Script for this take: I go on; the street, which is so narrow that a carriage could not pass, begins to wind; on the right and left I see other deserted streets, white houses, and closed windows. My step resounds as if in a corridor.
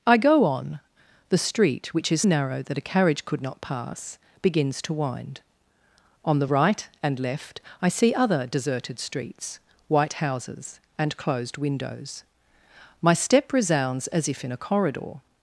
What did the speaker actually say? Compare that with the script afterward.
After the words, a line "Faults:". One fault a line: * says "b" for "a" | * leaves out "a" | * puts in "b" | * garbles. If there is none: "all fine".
I go on; the street, which is narrow that a carriage could not pass, begins to wind; on the right and left I see other deserted streets, white houses, and closed windows. My step resounds as if in a corridor.
Faults:
* leaves out "so"